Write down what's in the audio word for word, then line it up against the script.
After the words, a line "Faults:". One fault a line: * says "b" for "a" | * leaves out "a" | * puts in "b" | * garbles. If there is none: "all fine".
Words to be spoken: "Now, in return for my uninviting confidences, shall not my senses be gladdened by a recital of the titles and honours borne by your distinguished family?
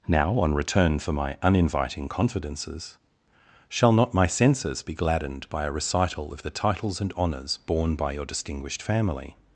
"Now, on return for my uninviting confidences, shall not my senses be gladdened by a recital of the titles and honours borne by your distinguished family?
Faults:
* says "on" for "in"